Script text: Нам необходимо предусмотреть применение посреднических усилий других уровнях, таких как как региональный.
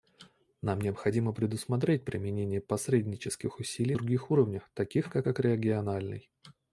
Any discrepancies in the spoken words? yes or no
no